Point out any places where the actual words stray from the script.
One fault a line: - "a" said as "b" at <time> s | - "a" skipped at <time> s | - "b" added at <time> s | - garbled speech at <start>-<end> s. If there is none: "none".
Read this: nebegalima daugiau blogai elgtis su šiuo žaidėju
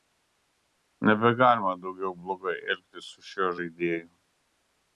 none